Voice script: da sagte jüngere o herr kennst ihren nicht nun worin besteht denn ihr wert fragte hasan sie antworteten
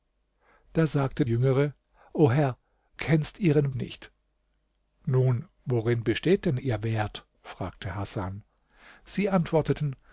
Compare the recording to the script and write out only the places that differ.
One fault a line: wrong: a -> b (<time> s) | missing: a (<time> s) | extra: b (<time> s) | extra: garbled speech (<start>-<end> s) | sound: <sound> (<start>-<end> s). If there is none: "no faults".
no faults